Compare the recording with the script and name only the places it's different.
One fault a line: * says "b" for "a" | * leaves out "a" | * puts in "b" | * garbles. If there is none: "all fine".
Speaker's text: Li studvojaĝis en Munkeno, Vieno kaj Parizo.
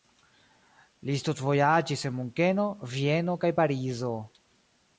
all fine